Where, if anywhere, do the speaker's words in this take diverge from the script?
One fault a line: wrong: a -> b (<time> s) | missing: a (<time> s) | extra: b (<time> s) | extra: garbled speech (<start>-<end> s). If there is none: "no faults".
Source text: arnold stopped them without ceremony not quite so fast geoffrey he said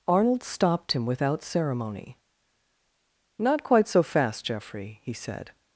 wrong: them -> him (0.9 s)